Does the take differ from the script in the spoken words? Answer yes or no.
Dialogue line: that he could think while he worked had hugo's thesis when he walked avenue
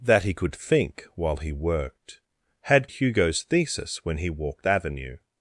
no